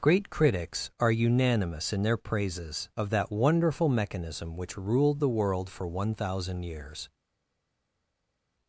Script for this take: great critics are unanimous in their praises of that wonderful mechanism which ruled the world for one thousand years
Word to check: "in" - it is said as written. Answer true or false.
true